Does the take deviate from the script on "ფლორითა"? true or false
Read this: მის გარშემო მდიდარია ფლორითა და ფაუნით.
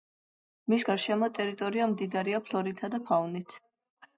false